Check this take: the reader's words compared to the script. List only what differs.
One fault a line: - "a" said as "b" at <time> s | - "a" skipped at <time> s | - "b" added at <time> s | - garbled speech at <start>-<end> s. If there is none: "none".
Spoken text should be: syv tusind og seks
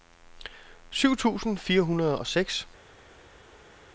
- "fire hundrede" added at 1.5 s